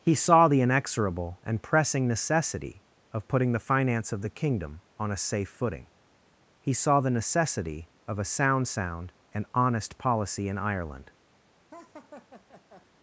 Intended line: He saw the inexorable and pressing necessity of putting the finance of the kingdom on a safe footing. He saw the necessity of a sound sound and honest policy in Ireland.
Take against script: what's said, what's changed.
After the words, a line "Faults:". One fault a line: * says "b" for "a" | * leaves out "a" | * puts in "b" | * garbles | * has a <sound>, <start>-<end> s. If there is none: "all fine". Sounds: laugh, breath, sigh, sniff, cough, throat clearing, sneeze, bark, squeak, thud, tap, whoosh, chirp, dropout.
He saw the inexorable and pressing necessity of putting the finance of the kingdom on a safe footing. He saw the necessity of a sound sound and honest policy in Ireland.
Faults:
* has a laugh, 11.7-12.9 s